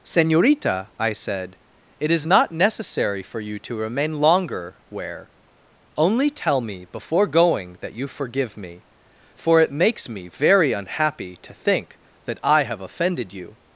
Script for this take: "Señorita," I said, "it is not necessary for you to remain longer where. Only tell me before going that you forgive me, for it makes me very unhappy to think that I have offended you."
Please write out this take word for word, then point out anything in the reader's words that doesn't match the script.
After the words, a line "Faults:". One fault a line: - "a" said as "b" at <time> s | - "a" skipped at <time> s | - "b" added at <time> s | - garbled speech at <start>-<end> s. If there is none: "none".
"Señorita," I said, "it is not necessary for you to remain longer where. Only tell me before going that you forgive me, for it makes me very unhappy to think that I have offended you."
Faults:
none